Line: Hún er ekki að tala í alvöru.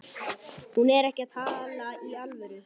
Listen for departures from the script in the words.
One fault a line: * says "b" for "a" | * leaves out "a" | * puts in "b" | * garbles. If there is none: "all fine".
all fine